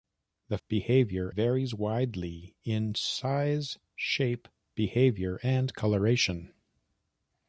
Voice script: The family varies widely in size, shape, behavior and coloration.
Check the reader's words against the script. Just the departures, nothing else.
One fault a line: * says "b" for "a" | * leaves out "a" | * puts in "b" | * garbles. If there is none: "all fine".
* says "behavior" for "family"